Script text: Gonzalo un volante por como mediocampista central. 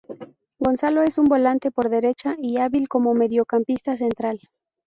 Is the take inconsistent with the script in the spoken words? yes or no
yes